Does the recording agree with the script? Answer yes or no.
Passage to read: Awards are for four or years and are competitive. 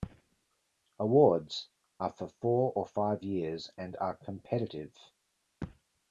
no